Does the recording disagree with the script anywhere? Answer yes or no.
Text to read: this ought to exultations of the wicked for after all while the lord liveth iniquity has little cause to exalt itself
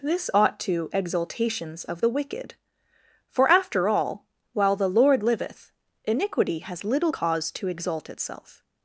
no